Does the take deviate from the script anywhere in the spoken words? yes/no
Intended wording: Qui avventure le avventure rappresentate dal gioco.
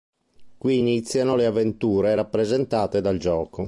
yes